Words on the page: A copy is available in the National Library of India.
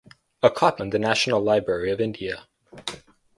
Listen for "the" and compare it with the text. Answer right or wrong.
right